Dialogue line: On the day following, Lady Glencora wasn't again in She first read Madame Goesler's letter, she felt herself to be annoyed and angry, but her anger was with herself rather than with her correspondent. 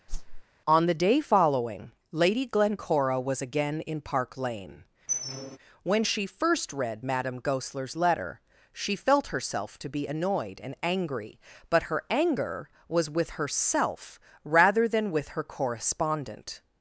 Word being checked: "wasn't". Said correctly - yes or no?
no